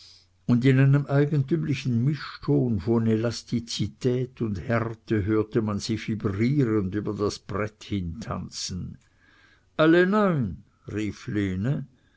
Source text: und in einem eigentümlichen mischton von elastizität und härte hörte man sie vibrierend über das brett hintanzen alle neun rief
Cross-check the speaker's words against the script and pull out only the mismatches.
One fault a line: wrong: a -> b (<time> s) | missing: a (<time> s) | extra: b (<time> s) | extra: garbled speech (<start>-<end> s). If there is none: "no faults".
no faults